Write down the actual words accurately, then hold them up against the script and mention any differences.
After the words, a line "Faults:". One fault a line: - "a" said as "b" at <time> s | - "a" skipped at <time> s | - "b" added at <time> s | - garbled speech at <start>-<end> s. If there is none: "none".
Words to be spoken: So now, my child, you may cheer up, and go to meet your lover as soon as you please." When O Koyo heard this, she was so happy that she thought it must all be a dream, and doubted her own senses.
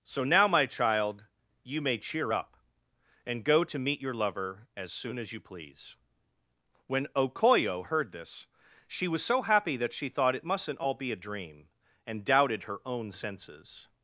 So now, my child, you may cheer up, and go to meet your lover as soon as you please." When O Koyo heard this, she was so happy that she thought it mustn't all be a dream, and doubted her own senses.
Faults:
- "must" said as "mustn't" at 10.4 s